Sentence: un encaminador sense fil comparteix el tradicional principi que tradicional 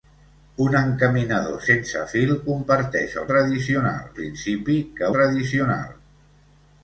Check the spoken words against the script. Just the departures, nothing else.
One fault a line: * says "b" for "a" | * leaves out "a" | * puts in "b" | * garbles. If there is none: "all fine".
all fine